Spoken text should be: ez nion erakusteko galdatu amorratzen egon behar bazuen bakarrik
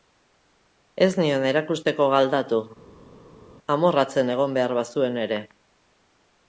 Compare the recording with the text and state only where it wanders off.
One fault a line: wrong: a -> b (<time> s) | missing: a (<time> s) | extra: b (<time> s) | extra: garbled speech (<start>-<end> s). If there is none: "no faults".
wrong: bakarrik -> ere (5.3 s)